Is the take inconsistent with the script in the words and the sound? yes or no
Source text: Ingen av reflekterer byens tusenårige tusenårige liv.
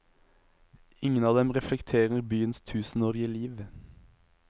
yes